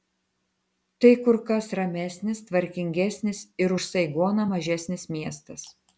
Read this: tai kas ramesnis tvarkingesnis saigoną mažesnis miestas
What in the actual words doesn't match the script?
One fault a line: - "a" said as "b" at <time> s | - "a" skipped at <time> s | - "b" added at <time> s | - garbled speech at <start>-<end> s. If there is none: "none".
- "kur" added at 1.2 s
- "ir už" added at 3.6 s